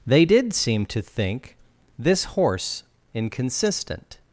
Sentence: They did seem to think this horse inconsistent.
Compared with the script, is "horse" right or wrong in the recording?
right